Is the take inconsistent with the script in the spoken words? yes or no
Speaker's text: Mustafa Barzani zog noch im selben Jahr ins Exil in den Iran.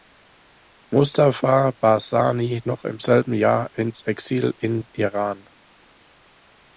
yes